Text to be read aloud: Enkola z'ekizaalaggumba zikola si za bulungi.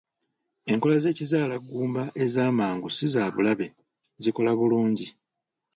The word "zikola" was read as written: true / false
false